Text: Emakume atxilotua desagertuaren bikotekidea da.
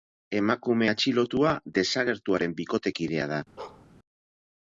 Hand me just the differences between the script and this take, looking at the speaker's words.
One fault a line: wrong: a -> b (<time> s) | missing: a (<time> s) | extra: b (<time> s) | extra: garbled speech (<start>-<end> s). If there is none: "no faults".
no faults